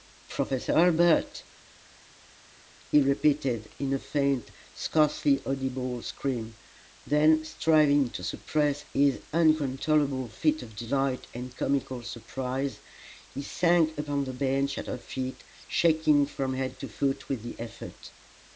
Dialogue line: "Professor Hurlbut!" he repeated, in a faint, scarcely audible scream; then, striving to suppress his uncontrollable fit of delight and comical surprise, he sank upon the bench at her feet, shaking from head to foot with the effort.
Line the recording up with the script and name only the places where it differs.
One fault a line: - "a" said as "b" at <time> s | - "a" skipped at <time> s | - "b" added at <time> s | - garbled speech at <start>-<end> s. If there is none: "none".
none